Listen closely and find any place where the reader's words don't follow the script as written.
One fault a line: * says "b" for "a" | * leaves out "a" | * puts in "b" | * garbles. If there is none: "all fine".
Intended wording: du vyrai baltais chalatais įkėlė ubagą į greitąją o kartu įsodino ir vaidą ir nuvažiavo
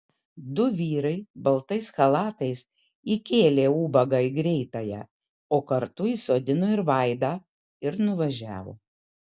all fine